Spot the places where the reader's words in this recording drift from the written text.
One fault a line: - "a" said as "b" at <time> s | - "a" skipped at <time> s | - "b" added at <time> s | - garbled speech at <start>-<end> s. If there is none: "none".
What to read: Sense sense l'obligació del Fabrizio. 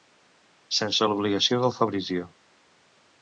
- "sense" skipped at 1.1 s